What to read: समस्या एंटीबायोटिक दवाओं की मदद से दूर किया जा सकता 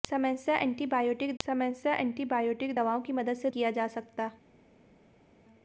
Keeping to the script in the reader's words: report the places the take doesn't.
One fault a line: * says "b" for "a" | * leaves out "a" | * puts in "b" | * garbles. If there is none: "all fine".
* puts in "समस्या एंटीबायोटिक"
* leaves out "दूर"